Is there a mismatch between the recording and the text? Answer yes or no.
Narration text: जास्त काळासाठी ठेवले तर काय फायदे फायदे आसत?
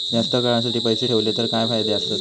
yes